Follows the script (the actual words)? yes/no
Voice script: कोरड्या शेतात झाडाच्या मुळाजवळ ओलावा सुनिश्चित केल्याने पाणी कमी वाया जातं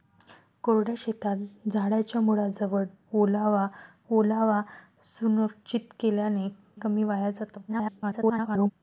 no